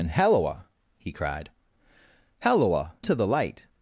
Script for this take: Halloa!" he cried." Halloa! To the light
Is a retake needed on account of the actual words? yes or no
no